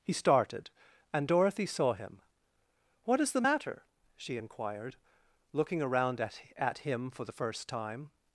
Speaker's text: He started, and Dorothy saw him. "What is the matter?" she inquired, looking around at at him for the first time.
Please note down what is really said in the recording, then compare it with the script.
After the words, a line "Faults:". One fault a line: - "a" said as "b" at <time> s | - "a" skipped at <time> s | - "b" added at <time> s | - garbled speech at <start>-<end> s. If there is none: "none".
He started, and Dorothy saw him. "What is the matter?" she inquired, looking around at at him for the first time.
Faults:
none